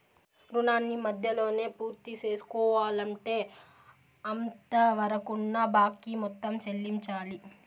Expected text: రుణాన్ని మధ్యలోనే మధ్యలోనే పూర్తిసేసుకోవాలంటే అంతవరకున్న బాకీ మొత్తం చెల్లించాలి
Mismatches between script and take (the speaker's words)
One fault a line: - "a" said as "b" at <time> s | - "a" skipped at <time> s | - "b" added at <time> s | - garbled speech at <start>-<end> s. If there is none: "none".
- "మధ్యలోనే" skipped at 1.6 s